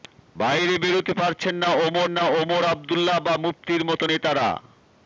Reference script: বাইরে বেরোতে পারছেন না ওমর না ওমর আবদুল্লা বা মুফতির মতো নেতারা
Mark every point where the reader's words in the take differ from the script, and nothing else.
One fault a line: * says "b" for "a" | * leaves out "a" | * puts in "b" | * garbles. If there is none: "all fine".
all fine